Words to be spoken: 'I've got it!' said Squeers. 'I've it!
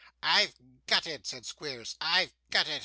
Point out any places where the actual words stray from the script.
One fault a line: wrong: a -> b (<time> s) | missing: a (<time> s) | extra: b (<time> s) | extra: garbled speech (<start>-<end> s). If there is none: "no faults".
extra: got (2.5 s)